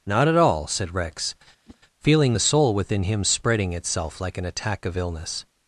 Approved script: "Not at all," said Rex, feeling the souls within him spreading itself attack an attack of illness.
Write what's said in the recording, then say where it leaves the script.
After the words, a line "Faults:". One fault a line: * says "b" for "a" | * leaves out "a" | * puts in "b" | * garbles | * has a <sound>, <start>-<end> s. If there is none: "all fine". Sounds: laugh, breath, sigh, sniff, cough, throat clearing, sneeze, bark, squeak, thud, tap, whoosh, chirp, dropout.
"Not at all," said Rex, feeling the soul within him spreading itself like an attack of illness.
Faults:
* has a whoosh, 1.7-1.8 s
* says "soul" for "souls"
* says "like" for "attack"